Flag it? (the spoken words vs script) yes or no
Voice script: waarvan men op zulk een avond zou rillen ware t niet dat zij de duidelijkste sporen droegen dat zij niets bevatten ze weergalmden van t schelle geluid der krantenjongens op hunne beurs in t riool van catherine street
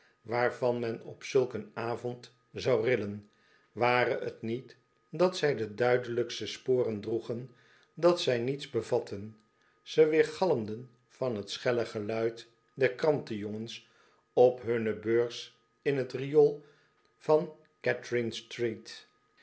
no